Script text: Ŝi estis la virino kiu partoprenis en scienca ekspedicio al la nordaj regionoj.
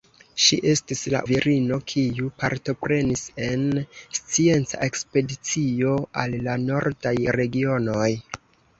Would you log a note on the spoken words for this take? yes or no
no